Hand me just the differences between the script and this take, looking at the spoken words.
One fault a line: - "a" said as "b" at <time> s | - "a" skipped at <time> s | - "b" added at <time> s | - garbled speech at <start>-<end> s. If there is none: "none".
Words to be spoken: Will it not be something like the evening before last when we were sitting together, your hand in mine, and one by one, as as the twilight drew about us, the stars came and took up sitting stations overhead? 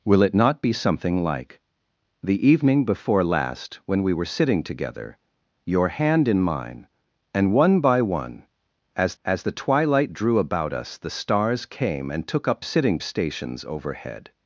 none